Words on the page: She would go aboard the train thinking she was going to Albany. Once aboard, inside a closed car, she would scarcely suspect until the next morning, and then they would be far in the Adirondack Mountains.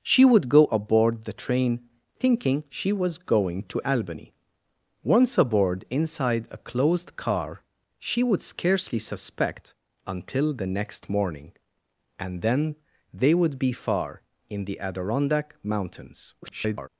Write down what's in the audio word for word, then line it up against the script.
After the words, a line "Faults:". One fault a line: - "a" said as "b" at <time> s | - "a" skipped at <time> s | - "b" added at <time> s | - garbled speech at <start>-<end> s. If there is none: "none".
She would go aboard the train thinking she was going to Albany. Once aboard, inside a closed car, she would scarcely suspect until the next morning, and then they would be far in the Adirondack Mountains. [garbled]
Faults:
- garbled speech at 16.4-16.9 s